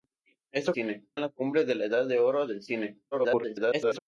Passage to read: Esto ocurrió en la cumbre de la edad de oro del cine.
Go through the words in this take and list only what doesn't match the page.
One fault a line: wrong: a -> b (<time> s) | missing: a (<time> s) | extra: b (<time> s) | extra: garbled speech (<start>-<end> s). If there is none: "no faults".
wrong: ocurrió -> cine (0.7 s)
extra: garbled speech (3.1-4.0 s)